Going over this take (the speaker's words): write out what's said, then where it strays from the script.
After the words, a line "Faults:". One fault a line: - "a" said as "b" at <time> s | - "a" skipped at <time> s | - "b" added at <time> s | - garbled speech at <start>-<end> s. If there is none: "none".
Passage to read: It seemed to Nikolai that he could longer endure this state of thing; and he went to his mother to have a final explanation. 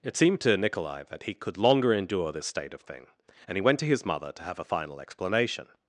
It seemed to Nikolai that he could longer endure this state of thing; and he went to his mother to have a final explanation.
Faults:
none